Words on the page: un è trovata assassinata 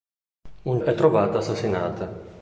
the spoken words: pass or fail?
pass